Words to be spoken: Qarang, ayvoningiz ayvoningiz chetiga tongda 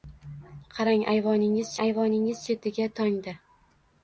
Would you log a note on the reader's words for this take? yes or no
no